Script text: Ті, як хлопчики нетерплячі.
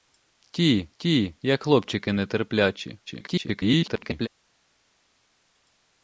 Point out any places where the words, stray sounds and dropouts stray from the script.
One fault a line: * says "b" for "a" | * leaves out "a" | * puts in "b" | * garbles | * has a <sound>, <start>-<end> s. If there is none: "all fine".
* puts in "ті"
* garbles